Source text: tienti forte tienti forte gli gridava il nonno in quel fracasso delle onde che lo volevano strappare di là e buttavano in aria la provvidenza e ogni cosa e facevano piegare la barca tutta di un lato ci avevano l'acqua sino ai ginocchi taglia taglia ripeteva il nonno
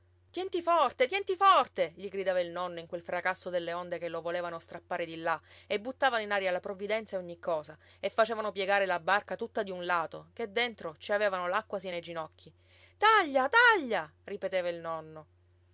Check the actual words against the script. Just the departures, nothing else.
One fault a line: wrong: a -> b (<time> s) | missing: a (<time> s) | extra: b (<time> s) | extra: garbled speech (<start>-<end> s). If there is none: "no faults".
extra: che dentro (10.3 s)